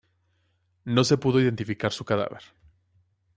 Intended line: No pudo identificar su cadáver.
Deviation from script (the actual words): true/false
true